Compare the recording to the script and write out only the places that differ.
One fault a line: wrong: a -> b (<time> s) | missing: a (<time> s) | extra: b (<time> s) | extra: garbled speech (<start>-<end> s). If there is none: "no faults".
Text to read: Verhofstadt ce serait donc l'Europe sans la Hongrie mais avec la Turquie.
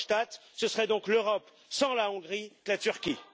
missing: mais avec (2.5 s)